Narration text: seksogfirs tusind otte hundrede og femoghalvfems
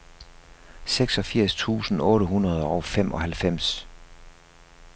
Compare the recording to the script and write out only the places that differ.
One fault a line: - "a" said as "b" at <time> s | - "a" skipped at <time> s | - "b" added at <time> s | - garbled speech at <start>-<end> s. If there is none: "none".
none